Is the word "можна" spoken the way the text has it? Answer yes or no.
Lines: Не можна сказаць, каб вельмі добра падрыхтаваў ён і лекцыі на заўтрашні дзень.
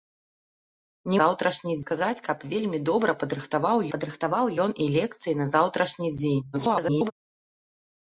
no